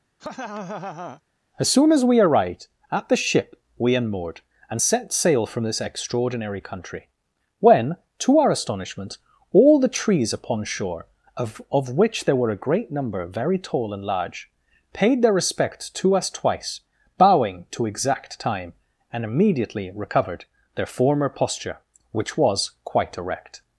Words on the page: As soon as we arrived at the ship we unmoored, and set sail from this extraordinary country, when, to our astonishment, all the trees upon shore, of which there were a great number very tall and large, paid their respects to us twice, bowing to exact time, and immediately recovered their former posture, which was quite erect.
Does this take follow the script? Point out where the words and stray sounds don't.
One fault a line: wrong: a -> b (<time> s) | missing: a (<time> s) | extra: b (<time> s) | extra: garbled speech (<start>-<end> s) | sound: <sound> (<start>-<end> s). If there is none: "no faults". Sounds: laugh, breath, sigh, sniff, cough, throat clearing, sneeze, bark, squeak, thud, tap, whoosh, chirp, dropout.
sound: laugh (0.2-1.2 s)
extra: of (11.7 s)